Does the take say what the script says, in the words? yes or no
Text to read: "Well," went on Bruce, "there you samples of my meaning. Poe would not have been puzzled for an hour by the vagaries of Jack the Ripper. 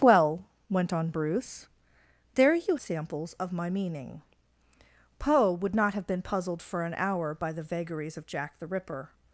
yes